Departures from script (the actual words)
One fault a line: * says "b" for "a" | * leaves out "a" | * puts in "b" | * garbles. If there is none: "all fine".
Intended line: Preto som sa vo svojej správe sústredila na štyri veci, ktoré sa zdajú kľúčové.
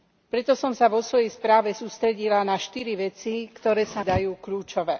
all fine